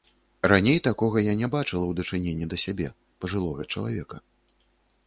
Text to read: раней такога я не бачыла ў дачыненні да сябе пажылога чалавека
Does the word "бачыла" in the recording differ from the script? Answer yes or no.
no